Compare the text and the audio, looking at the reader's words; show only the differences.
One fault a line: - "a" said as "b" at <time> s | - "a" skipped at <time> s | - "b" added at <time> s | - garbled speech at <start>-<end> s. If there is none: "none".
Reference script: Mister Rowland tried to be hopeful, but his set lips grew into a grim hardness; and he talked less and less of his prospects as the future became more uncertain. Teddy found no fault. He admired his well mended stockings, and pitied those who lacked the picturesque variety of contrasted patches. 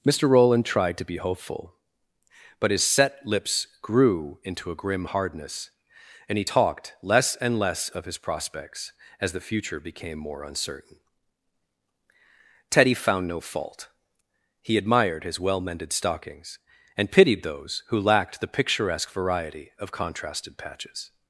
none